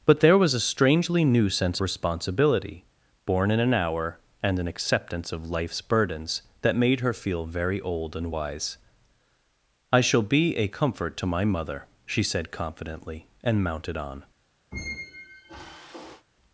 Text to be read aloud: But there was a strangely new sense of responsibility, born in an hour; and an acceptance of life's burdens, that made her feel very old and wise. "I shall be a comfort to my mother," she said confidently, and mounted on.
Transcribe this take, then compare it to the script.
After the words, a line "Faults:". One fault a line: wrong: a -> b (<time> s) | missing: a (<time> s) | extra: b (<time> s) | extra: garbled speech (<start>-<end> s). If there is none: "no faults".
But there was a strangely new sense responsibility, born in an hour; and an acceptance of life's burdens, that made her feel very old and wise. "I shall be a comfort to my mother," she said confidently, and mounted on.
Faults:
missing: of (1.8 s)